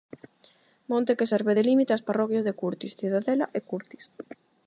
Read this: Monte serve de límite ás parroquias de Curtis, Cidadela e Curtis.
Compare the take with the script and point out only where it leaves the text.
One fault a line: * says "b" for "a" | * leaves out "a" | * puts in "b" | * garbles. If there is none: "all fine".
* puts in "que"